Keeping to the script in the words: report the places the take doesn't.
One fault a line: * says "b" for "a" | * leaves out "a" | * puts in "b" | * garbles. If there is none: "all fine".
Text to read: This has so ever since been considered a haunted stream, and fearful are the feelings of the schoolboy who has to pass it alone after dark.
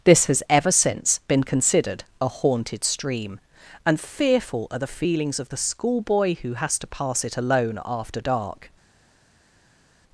* leaves out "so"